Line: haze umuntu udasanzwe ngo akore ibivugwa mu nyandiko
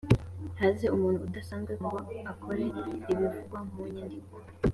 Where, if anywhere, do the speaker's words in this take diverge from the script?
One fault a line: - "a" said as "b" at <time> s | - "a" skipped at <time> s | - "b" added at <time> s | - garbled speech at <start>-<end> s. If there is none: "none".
none